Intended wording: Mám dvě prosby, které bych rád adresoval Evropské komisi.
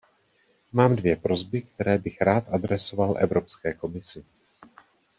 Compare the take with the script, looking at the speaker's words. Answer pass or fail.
pass